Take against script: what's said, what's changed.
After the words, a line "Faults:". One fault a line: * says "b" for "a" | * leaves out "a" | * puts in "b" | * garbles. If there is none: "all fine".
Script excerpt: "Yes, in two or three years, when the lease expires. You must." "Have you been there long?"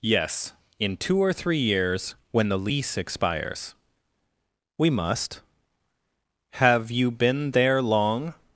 "Yes, in two or three years, when the lease expires. We must." "Have you been there long?"
Faults:
* says "We" for "You"